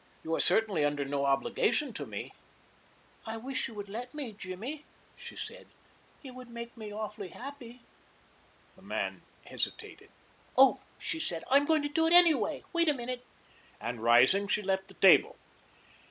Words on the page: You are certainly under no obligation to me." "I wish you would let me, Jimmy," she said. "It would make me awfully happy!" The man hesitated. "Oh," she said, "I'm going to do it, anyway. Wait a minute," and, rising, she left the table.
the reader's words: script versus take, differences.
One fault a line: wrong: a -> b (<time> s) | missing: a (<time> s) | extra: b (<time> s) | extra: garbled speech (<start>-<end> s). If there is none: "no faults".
no faults